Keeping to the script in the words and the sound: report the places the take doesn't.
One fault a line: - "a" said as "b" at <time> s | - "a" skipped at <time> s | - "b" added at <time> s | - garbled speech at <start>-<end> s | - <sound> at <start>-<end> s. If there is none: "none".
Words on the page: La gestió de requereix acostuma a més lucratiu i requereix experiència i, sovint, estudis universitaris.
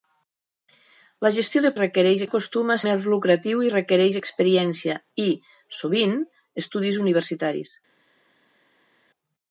none